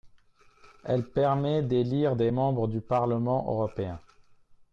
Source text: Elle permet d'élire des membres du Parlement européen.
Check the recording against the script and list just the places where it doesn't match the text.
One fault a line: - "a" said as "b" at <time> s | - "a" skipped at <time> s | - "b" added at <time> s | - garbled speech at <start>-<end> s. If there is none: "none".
none